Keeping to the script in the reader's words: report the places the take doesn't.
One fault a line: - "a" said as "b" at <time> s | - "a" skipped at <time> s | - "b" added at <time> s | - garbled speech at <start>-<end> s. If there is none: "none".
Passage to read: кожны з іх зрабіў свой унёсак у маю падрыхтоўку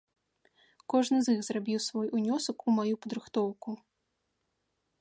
none